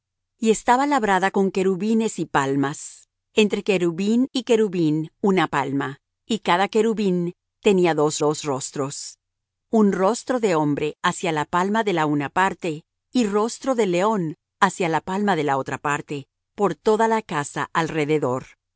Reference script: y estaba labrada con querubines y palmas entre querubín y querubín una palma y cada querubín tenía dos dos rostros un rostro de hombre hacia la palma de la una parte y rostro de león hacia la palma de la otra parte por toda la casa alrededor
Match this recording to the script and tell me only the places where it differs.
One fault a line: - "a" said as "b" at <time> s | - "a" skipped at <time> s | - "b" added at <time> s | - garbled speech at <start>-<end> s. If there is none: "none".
none